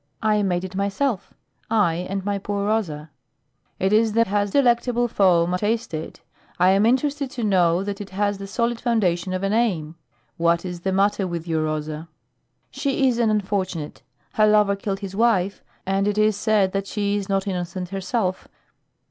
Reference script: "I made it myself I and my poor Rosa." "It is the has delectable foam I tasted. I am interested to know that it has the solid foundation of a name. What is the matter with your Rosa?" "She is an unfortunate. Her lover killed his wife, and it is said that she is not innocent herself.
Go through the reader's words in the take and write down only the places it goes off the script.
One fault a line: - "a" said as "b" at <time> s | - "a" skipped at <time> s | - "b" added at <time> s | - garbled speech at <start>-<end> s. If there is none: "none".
none